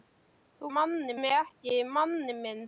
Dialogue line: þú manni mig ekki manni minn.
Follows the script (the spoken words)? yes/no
yes